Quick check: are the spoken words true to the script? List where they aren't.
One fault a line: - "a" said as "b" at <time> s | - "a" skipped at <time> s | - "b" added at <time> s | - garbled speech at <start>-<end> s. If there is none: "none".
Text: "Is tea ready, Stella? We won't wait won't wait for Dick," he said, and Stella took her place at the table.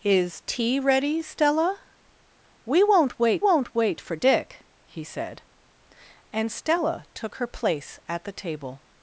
none